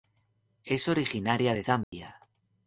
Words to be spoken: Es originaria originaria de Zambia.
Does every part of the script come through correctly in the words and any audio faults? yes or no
no